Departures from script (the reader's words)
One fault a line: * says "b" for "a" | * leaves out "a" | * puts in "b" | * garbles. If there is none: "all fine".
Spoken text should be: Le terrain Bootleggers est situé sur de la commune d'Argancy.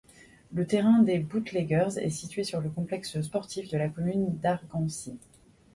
* puts in "des"
* puts in "le complexe sportif"